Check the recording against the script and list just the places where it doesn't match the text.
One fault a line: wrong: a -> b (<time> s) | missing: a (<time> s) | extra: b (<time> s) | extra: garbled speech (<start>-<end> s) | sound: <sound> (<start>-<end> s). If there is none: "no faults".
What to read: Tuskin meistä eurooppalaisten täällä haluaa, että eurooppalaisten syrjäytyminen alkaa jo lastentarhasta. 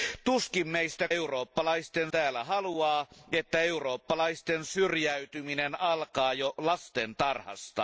no faults